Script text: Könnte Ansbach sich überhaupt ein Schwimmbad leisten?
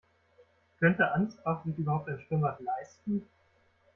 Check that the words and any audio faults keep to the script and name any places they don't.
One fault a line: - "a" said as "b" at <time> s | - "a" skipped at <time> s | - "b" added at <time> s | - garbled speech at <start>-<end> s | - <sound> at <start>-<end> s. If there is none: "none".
none